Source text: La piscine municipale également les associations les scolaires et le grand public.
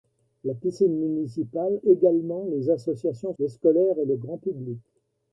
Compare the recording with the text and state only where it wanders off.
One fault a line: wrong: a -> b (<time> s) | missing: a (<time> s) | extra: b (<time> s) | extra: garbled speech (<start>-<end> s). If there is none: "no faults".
no faults